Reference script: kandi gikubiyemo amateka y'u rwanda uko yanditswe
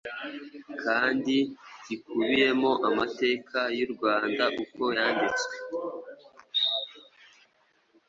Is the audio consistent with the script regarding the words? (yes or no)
yes